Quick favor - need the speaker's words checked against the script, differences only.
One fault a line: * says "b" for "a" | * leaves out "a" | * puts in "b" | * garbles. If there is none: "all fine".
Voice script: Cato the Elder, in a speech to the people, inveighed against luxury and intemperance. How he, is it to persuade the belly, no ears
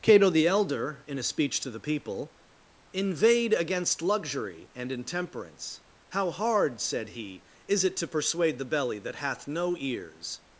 * puts in "hard said"
* puts in "that hath"